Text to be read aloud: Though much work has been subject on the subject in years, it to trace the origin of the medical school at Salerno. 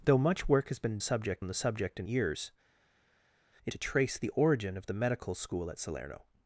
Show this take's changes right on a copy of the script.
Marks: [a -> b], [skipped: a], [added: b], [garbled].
Though much work has been subject on the subject in years, it to trace the origin of the medical school at Salerno.